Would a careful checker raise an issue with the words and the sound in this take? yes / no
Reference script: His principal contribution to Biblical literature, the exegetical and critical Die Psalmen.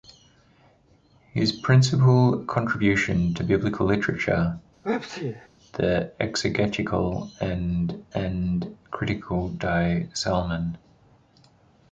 yes